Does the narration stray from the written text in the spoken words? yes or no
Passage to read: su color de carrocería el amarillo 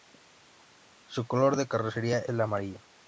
no